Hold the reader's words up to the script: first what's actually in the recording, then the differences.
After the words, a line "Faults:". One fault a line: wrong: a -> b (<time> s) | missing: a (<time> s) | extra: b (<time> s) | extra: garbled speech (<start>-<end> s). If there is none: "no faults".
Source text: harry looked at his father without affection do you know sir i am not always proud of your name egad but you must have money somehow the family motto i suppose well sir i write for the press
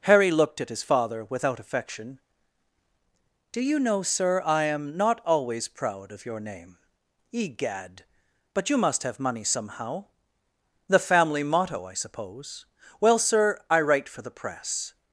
harry looked at his father without affection do you know sir i am not always proud of your name egad but you must have money somehow the family motto i suppose well sir i write for the press
Faults:
no faults